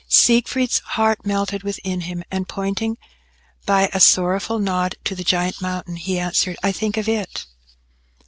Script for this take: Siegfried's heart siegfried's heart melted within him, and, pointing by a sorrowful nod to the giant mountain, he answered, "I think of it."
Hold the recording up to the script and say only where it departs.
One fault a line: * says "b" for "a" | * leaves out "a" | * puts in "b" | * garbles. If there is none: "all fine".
* leaves out "siegfried's heart"